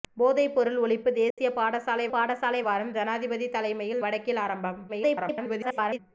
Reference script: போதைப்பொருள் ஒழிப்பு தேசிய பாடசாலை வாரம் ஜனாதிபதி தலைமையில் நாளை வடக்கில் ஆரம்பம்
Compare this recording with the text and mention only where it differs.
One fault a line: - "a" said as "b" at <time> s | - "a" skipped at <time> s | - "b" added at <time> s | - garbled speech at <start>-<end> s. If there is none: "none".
- "பாடசாலை" added at 2.1 s
- "நாளை" skipped at 4.0 s
- garbled speech at 4.9-6.0 s